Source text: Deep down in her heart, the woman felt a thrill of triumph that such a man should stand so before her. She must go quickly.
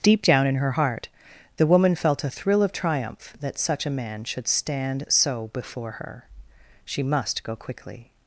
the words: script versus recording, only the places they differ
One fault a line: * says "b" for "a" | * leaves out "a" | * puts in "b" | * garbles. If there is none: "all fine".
all fine